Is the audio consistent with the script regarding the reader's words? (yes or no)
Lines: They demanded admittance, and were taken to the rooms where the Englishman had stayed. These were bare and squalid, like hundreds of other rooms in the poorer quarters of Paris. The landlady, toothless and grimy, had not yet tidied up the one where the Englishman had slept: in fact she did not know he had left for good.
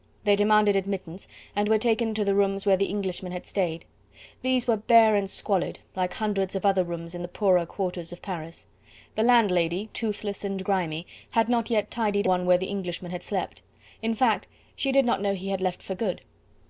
no